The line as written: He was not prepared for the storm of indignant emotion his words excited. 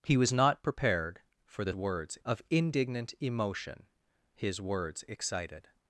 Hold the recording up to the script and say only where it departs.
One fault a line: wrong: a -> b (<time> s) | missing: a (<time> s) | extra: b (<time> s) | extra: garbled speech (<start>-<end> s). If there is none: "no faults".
wrong: storm -> words (1.7 s)